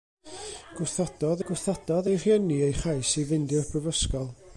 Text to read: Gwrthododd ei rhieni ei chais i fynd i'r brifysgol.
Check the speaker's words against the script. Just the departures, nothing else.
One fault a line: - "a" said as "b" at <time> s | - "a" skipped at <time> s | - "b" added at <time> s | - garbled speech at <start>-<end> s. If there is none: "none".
- "gwrthododd" added at 1.5 s